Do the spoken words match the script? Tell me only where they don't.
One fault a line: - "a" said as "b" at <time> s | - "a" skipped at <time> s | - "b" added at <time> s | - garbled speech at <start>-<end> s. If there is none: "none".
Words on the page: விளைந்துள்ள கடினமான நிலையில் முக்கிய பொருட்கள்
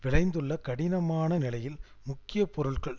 none